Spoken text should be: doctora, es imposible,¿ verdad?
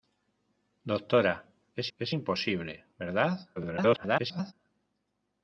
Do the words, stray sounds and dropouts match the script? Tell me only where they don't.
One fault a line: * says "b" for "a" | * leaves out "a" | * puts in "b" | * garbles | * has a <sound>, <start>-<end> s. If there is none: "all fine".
* puts in "es"
* garbles